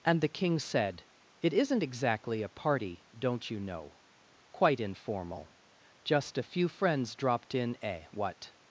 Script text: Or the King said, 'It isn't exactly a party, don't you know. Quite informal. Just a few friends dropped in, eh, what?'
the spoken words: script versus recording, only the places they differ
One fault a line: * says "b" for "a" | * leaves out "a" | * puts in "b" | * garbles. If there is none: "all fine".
* says "And" for "Or"